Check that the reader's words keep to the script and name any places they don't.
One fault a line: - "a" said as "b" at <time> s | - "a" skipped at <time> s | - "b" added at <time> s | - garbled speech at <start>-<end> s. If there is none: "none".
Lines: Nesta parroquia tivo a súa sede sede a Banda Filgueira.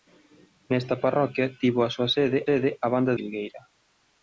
none